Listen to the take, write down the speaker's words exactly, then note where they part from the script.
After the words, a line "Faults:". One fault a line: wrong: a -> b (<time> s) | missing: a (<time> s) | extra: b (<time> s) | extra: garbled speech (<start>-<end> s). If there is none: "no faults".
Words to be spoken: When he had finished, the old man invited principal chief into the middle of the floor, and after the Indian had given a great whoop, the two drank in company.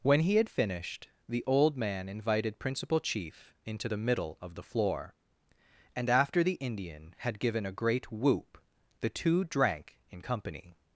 When he had finished, the old man invited principal chief into the middle of the floor, and after the Indian had given a great whoop, the two drank in company.
Faults:
no faults